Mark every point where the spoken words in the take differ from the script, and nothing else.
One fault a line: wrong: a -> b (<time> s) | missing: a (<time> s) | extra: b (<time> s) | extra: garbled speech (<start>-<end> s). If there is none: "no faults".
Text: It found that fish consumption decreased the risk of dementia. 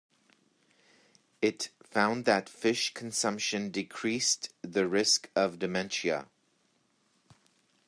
no faults